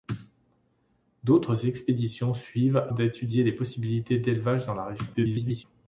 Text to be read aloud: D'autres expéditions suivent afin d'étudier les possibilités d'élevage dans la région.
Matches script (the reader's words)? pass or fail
fail